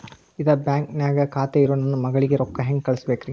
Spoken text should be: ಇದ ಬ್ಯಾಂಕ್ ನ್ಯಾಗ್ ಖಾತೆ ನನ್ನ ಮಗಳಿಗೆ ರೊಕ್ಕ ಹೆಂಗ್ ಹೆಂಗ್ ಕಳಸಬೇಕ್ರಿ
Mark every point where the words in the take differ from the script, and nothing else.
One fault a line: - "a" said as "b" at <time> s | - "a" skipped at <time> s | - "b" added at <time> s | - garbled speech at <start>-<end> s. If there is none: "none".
- "ಇರೋ" added at 1.6 s
- "ಹೆಂಗ್" skipped at 2.8 s